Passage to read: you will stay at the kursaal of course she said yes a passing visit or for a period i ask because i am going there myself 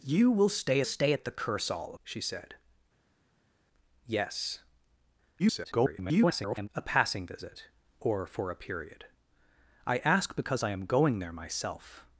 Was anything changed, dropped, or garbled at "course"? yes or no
yes